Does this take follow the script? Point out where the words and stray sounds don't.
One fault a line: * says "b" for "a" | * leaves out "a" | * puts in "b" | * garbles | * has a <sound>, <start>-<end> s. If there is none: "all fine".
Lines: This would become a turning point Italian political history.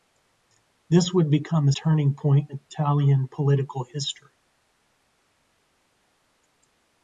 all fine